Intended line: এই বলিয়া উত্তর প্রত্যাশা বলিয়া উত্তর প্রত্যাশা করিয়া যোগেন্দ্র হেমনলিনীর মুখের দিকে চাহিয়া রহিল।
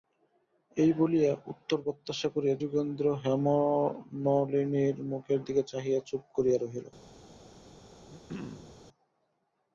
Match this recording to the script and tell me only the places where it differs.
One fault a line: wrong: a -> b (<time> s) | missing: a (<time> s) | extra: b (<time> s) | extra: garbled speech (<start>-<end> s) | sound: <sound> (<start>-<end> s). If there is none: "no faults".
missing: বলিয়া উত্তর প্রত্যাশা (2.3 s)
extra: চুপ করিয়া (6.1 s)
sound: throat clearing (8.1-8.8 s)